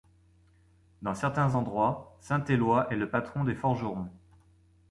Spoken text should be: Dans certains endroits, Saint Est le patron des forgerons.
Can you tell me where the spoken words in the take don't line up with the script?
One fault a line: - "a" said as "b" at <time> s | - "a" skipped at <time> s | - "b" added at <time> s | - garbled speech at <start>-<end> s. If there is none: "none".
- "Éloi" added at 2.4 s